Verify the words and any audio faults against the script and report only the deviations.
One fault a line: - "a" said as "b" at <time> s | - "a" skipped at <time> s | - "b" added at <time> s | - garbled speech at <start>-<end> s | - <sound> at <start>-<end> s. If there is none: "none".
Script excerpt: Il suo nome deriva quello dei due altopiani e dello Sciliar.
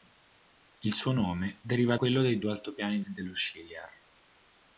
none